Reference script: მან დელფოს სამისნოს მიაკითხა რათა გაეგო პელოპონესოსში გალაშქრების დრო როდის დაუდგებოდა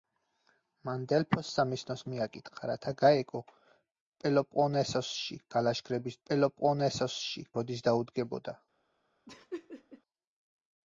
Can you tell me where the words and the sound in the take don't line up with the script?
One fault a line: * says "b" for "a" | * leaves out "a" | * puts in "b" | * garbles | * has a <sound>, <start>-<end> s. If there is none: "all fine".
* says "პელოპონესოსში" for "დრო"
* has a laugh, 9.3-10.0 s